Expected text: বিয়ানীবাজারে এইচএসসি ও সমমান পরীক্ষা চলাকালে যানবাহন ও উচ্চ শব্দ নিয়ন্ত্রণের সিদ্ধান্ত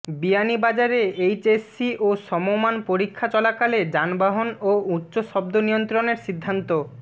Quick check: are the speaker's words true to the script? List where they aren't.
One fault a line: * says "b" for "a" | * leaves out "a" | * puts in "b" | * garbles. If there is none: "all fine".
all fine